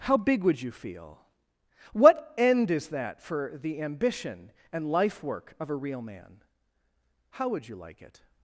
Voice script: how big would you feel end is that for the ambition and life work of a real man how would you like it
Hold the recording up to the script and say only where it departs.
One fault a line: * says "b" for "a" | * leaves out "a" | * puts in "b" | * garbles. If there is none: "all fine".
* puts in "what"